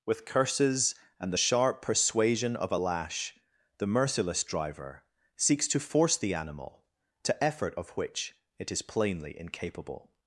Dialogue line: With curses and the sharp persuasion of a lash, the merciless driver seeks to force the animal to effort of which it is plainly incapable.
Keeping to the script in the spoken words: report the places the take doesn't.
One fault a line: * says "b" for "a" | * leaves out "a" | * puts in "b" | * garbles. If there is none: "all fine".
all fine